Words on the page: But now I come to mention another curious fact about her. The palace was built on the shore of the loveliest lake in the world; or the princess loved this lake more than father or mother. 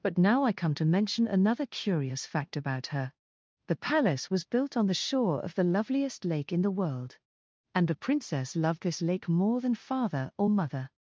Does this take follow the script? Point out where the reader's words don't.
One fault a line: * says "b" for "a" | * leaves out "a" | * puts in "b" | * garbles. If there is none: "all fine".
* says "and" for "or"